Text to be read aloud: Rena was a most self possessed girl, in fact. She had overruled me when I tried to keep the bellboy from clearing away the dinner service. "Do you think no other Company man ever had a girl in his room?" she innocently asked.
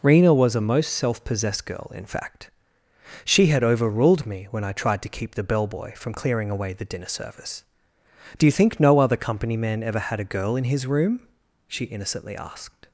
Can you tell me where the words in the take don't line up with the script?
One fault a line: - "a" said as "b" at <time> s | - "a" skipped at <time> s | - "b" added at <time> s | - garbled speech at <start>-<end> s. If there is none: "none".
none